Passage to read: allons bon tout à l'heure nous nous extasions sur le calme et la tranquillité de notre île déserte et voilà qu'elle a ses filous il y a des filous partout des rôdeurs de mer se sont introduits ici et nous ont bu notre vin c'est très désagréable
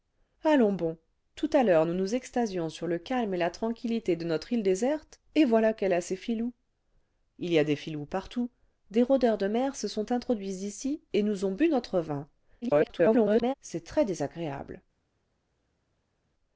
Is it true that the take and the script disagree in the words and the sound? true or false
true